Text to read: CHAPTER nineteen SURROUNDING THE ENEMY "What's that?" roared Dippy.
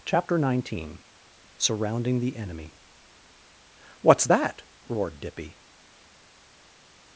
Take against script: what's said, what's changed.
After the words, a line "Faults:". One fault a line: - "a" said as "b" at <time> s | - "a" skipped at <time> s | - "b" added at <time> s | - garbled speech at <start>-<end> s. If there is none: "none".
CHAPTER nineteen SURROUNDING THE ENEMY "What's that?" roared Dippy.
Faults:
none